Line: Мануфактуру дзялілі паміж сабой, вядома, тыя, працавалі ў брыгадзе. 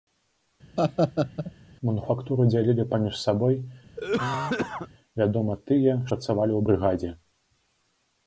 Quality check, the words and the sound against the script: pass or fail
fail